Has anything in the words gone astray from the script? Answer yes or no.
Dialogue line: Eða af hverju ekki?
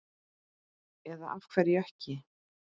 no